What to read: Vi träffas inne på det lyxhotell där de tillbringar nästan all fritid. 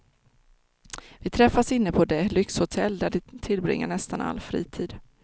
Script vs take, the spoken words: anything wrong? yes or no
no